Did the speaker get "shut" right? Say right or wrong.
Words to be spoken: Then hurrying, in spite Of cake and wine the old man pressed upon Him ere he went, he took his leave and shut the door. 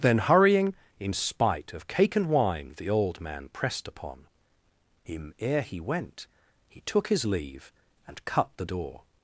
wrong